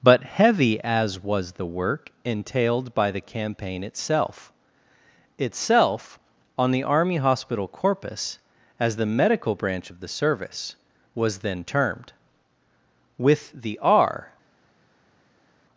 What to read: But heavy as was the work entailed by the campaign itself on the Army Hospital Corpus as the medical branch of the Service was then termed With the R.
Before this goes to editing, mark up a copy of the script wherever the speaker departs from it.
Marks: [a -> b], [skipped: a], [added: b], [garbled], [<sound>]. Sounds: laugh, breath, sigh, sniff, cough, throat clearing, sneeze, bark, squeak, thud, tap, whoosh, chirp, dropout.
But heavy as was the work entailed by the campaign itself [added: itself] on the Army Hospital Corpus as the medical branch of the Service was then termed With the R.